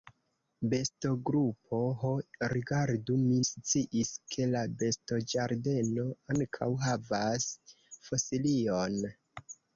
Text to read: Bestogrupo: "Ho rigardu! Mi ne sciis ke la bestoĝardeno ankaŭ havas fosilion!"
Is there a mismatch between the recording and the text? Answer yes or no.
yes